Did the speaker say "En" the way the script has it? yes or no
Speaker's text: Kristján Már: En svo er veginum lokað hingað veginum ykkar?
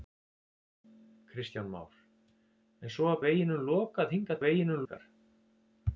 yes